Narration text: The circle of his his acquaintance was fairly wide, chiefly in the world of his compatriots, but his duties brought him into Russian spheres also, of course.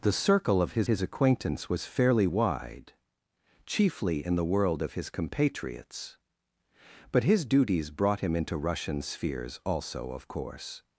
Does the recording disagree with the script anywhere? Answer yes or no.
no